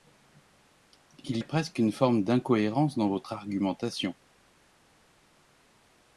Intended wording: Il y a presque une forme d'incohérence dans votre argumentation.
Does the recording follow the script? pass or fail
fail